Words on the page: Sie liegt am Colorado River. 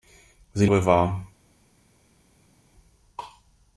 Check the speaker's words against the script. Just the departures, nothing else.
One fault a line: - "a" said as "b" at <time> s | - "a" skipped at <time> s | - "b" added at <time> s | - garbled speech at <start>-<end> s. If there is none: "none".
- "liegt am Colorado" skipped at 0.7 s